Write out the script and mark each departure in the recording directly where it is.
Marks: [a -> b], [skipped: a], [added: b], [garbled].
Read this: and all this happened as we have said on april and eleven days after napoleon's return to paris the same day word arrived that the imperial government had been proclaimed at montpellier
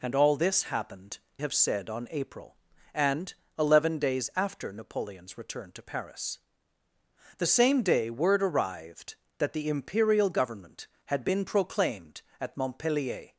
and all this happened [skipped: as we] have said on april and eleven days after napoleon's return to paris the same day word arrived that the imperial government had been proclaimed at montpellier